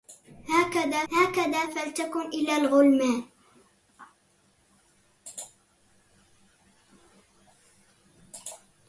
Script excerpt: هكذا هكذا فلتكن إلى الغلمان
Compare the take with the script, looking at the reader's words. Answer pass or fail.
pass